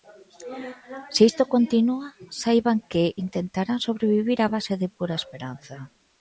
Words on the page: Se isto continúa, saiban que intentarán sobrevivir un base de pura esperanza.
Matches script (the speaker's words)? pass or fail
fail